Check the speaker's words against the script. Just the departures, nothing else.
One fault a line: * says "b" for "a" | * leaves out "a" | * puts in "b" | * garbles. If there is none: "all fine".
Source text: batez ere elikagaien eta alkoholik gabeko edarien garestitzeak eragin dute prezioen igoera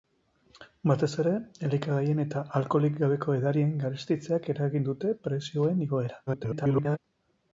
* garbles